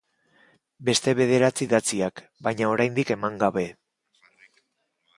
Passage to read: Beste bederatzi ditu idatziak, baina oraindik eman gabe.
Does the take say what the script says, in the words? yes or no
no